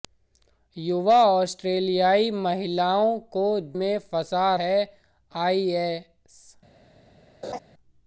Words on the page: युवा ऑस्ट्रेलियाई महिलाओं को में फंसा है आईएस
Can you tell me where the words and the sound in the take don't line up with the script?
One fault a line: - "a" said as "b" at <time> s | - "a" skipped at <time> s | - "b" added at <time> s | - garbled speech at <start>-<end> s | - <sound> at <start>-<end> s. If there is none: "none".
- laugh at 7.4-7.6 s